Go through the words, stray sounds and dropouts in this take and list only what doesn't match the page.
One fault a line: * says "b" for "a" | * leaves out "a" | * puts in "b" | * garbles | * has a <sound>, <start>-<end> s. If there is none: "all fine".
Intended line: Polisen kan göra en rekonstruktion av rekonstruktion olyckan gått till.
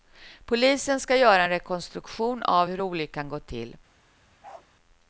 * says "ska" for "kan"
* says "hur" for "rekonstruktion"
* has a bark, 4.4-4.7 s